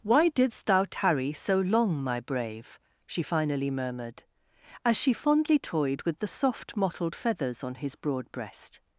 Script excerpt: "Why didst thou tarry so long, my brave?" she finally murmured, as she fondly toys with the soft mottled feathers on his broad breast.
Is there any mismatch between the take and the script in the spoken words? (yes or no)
yes